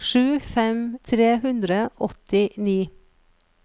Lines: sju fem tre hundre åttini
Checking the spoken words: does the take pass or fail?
pass